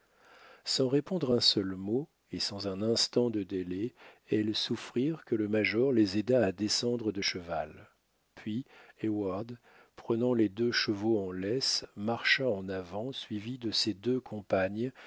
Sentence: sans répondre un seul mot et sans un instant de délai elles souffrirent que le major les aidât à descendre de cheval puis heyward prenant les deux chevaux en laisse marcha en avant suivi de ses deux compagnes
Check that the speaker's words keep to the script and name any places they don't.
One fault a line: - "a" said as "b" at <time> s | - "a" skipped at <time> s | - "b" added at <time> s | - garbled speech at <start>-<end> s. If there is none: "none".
none